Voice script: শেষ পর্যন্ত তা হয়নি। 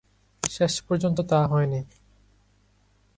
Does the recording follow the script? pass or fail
pass